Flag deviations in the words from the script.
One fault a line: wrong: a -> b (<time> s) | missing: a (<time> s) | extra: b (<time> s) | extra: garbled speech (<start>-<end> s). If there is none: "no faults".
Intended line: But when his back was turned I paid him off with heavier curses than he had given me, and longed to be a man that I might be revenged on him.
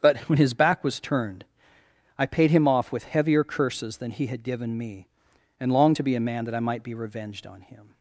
no faults